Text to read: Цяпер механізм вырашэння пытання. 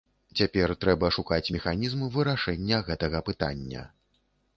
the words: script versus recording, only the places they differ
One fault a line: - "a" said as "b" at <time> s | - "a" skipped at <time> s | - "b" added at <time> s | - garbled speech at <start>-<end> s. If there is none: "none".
- "трэба шукаць" added at 0.8 s
- "гэтага" added at 2.9 s